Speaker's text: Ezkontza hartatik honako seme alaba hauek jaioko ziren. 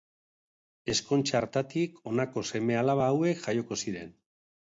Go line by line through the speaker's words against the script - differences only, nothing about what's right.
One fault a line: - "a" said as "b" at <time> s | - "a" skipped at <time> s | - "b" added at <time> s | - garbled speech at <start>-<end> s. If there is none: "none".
none